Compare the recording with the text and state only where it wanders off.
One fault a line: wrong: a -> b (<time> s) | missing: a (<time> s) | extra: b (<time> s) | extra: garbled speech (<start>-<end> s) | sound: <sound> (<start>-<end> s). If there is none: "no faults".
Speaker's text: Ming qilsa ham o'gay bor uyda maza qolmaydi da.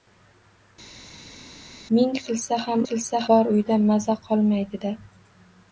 wrong: o'gay -> qilsa (2.9 s)